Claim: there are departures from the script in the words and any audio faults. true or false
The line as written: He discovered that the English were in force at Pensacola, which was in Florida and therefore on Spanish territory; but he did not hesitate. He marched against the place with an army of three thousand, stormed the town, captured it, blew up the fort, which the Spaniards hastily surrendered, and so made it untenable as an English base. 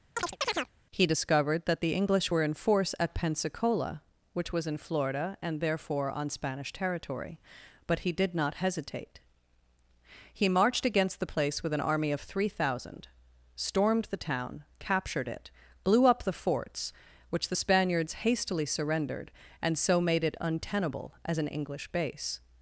true